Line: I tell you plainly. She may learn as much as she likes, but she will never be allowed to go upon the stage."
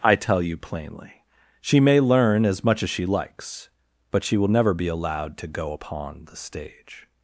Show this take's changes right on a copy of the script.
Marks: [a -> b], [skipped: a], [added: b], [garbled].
I tell you plainly. She may learn as much as she likes, but she will never be allowed to go upon the stage."